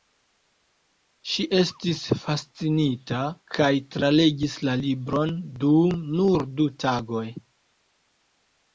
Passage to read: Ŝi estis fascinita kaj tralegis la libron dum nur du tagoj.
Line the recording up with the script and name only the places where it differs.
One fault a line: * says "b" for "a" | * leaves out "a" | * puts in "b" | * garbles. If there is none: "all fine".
all fine